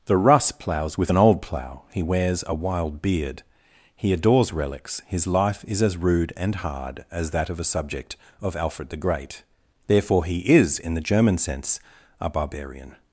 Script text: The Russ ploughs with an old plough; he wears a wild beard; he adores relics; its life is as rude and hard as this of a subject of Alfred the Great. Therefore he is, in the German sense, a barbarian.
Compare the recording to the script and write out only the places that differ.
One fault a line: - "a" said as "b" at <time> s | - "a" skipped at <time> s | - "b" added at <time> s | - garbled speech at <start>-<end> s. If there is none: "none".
- "its" said as "his" at 5.0 s
- "this" said as "that" at 7.3 s